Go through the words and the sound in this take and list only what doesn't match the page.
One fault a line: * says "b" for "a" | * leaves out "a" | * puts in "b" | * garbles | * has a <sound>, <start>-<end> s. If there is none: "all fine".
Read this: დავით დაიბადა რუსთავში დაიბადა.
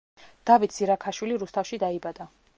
* says "ზირაქაშვილი" for "დაიბადა"